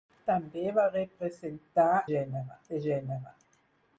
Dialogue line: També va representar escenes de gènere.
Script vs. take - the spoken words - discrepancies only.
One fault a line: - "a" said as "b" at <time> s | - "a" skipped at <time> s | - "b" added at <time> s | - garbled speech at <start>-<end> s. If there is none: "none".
- "escenes" said as "gènere" at 2.1 s